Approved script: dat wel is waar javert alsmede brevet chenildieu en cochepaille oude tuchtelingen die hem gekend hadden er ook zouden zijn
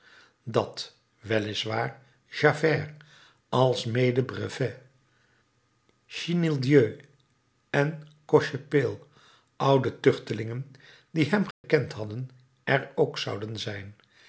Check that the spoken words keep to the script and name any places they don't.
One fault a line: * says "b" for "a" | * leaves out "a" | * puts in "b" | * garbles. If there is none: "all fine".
all fine